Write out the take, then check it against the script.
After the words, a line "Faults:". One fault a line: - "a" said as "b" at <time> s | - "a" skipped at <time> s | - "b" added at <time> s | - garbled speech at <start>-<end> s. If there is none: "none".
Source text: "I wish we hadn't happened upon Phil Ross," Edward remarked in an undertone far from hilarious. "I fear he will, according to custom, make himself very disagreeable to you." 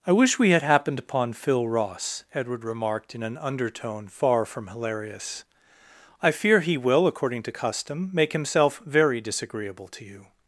"I wish we had happened upon Phil Ross," Edward remarked in an undertone far from hilarious. "I fear he will, according to custom, make himself very disagreeable to you."
Faults:
- "hadn't" said as "had" at 0.5 s